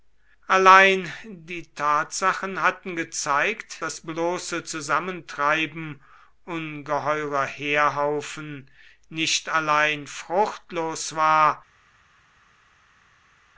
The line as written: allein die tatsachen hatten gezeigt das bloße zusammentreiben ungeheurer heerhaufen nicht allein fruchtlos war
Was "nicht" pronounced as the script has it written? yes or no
yes